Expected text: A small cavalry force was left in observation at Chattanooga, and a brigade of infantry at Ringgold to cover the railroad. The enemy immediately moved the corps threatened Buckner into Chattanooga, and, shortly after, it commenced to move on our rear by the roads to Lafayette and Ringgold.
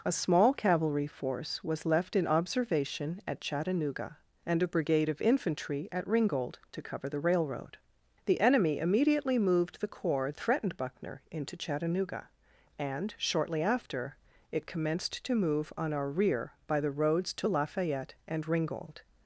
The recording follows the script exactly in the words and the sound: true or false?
true